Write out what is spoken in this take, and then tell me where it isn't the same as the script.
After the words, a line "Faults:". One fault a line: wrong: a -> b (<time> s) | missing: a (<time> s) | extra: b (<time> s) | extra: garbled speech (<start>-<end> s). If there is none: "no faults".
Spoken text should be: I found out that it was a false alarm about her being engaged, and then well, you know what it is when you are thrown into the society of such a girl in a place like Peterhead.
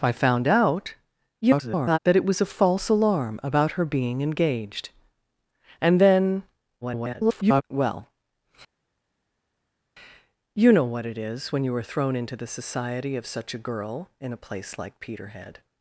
I found out [garbled] that it was a false alarm about her being engaged, and then [garbled] well, you know what it is when you are thrown into the society of such a girl in a place like Peterhead.
Faults:
extra: garbled speech (1.4-2.0 s)
extra: garbled speech (6.8-7.6 s)